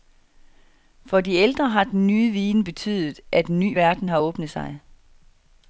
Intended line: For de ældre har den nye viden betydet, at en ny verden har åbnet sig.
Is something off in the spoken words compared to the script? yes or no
no